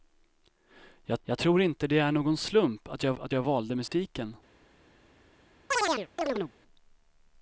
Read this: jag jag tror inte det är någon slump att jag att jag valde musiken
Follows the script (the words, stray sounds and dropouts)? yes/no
no